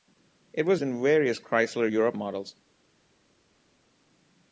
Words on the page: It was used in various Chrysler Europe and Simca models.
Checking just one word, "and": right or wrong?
wrong